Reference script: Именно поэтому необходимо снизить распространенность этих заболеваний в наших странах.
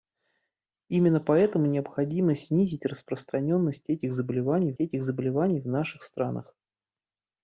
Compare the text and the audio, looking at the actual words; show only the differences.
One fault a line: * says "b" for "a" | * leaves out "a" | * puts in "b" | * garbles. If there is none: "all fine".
* puts in "этих заболеваний"